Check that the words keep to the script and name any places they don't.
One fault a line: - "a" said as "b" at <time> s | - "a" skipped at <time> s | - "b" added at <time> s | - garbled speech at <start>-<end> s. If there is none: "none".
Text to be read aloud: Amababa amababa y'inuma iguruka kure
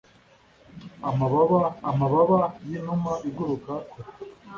none